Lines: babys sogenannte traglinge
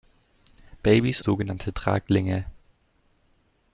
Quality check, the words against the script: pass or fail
pass